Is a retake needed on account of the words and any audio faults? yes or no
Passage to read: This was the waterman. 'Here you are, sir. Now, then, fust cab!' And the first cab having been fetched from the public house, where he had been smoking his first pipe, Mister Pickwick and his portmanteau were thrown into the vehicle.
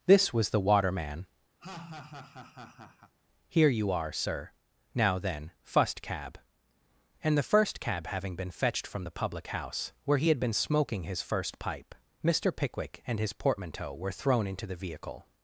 yes